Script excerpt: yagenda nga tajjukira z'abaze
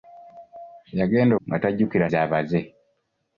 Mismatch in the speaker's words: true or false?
false